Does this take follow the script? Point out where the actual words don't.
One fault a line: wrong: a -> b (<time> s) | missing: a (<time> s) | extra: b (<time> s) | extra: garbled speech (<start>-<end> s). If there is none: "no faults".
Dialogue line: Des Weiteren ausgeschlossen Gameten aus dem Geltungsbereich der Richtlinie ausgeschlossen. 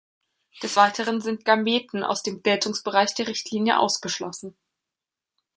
wrong: ausgeschlossen -> sind (1.2 s)